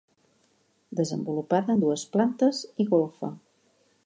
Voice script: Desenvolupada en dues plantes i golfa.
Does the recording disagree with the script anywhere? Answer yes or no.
no